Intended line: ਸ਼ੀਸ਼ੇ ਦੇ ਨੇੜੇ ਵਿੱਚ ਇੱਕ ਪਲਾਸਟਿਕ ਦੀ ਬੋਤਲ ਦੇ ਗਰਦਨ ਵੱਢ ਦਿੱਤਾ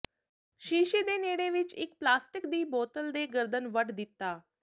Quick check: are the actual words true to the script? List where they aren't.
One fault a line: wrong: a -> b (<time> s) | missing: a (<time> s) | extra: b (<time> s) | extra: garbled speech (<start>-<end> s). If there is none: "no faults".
no faults